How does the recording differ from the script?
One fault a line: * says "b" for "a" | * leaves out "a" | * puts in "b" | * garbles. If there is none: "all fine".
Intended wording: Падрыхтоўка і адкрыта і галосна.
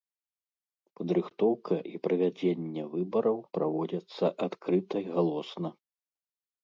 * puts in "правядзенне выбараў праводзяцца"